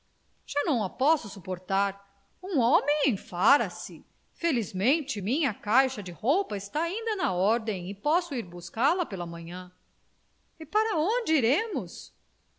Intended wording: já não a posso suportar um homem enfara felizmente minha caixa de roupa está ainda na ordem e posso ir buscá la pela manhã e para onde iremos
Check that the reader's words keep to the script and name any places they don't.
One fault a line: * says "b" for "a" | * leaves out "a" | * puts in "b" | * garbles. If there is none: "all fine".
* puts in "se"